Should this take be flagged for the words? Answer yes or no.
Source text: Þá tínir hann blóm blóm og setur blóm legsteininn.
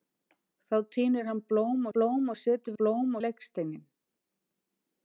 no